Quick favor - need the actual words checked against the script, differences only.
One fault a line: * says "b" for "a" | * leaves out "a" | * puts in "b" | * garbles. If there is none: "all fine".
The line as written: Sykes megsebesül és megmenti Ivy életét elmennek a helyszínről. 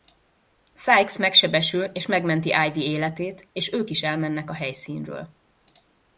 * puts in "és ők is"